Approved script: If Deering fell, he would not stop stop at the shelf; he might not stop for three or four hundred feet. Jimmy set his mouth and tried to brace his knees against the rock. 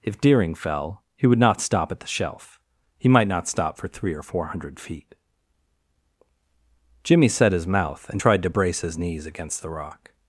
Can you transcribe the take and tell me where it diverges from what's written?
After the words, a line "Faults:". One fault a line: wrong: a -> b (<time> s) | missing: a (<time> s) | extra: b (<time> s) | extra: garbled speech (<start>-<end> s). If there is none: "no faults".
If Deering fell, he would not stop at the shelf; he might not stop for three or four hundred feet. Jimmy set his mouth and tried to brace his knees against the rock.
Faults:
missing: stop (1.9 s)